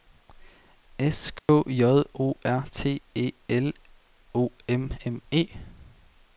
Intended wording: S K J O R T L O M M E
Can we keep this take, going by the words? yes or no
no